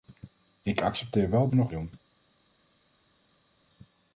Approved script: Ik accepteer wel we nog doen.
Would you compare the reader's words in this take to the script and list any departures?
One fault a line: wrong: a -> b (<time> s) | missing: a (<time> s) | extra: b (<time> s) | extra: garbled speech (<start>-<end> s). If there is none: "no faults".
no faults